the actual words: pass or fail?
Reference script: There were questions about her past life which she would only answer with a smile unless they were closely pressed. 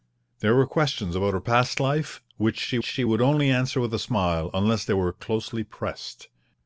fail